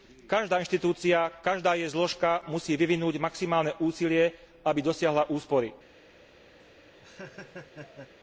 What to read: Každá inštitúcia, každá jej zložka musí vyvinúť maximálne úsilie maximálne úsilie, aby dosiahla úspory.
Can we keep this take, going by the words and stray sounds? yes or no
no